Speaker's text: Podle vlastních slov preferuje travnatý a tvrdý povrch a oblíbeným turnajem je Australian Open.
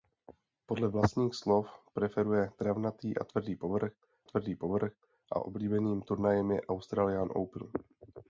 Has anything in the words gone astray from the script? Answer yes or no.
yes